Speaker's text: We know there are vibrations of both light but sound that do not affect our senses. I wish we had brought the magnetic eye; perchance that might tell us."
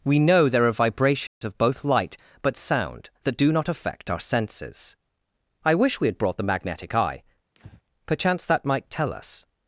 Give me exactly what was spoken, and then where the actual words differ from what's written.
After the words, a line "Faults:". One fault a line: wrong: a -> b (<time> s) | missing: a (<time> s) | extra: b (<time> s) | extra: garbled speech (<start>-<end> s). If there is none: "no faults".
We know there are vibrations of both light but sound that do not affect our senses. I wish we had brought the magnetic eye; perchance that might tell us."
Faults:
no faults